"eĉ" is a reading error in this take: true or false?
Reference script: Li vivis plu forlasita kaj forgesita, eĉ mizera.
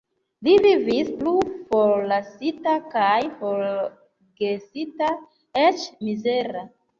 false